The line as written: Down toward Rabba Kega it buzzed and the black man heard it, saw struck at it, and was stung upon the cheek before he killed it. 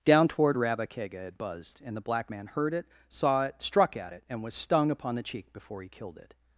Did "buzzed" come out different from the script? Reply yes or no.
no